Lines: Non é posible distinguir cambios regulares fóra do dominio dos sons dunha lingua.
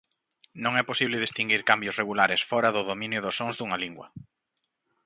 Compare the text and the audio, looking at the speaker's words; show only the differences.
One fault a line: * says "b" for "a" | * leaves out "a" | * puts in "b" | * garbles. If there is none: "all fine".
all fine